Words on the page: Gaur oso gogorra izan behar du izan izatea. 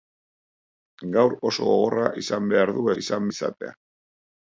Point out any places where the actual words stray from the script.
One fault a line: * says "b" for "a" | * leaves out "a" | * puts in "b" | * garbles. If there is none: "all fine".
all fine